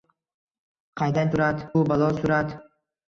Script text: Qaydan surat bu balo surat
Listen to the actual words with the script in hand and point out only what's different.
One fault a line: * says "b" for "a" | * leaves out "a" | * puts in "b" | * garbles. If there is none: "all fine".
all fine